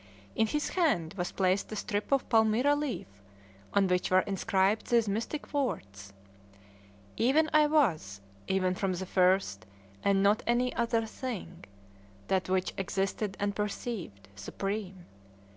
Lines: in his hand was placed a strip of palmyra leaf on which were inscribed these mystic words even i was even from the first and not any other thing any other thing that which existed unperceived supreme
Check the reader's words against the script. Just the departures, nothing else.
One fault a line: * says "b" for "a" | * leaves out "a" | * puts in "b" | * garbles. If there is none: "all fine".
* leaves out "any other thing"